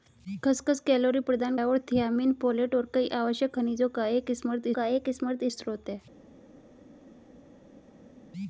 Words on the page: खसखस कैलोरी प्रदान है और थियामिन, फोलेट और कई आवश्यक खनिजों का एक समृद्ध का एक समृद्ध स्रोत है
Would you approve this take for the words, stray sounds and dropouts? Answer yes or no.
yes